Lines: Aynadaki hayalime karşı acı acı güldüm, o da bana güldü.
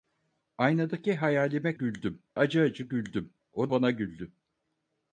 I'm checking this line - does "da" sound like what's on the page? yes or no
no